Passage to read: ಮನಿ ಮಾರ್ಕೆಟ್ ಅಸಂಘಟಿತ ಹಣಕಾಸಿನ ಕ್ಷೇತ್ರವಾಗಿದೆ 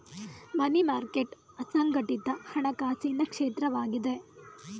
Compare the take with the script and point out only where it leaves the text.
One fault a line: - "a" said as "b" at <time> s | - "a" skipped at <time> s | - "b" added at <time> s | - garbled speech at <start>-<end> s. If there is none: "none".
none